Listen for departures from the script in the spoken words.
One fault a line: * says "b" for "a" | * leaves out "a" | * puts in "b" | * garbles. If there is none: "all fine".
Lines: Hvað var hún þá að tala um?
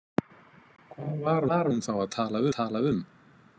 * puts in "var"
* puts in "tala"